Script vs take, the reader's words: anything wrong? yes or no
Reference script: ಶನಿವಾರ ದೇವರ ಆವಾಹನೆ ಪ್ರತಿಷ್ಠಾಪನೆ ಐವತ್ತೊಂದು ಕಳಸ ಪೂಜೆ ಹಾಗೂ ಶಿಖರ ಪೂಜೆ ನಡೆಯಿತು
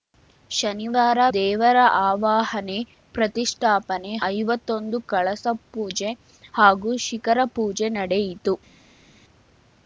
no